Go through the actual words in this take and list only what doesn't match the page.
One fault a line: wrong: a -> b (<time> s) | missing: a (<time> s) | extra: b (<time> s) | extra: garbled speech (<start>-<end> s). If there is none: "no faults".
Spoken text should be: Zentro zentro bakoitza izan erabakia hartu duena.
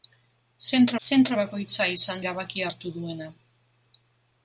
no faults